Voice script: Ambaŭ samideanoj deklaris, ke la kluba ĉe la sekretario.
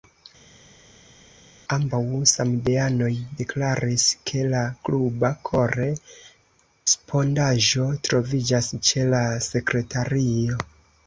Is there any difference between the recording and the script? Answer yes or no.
yes